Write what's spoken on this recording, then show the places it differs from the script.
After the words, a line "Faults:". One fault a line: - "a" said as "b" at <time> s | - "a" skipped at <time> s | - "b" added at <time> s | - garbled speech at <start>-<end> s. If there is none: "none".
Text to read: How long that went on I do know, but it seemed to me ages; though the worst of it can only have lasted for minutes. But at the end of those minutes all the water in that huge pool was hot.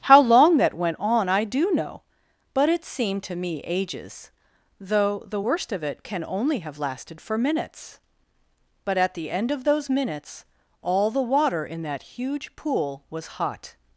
How long that went on I do know, but it seemed to me ages; though the worst of it can only have lasted for minutes. But at the end of those minutes all the water in that huge pool was hot.
Faults:
none